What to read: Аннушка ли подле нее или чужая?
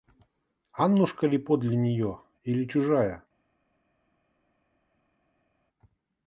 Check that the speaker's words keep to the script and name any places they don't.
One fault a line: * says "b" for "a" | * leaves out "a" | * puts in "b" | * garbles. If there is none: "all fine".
all fine